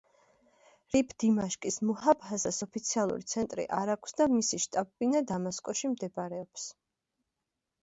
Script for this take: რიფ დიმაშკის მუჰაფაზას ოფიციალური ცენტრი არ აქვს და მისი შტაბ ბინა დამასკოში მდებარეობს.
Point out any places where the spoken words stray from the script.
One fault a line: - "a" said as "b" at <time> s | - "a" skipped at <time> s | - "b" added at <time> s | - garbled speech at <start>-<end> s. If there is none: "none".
none